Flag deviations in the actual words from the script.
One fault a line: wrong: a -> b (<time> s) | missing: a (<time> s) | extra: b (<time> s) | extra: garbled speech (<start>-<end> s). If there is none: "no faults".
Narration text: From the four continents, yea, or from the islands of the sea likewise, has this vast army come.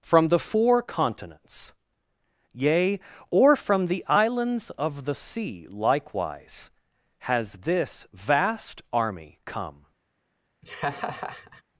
no faults